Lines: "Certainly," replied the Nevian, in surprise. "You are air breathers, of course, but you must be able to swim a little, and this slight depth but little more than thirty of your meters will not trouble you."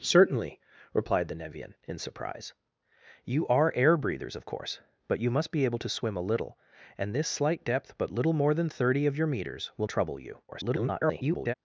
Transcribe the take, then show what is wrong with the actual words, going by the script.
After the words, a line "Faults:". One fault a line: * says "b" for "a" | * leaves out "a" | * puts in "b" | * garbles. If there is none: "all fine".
"Certainly," replied the Nevian, in surprise. "You are air breathers, of course, but you must be able to swim a little, and this slight depth but little more than thirty of your meters will trouble you." [garbled]
Faults:
* leaves out "not"
* garbles